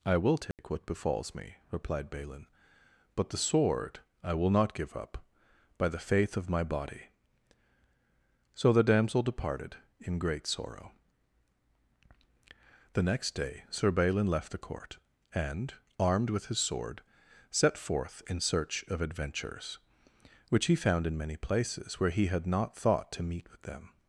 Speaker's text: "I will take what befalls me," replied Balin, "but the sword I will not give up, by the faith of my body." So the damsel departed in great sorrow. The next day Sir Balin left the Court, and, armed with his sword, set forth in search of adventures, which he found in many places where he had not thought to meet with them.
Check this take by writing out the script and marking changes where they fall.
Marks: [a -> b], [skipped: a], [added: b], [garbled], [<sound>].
"I will take [dropout] what befalls me," replied Balin, "but the sword I will not give up, by the faith of my body." So the damsel departed in great sorrow. The next day Sir Balin left the Court, and, armed with his sword, set forth in search of adventures, which he found in many places where he had not thought to meet with them.